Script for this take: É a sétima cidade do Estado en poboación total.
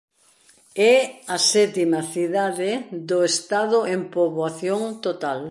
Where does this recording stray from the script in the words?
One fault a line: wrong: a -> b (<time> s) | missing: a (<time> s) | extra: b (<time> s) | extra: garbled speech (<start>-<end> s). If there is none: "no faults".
no faults